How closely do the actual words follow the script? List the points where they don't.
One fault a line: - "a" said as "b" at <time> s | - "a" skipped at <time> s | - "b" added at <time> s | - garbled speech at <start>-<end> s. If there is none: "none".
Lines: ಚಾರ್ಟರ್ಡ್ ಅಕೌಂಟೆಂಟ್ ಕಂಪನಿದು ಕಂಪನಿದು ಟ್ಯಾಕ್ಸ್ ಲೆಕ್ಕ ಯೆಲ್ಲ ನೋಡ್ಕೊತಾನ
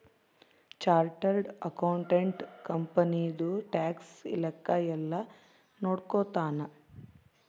- "ಕಂಪನಿದು" skipped at 3.5 s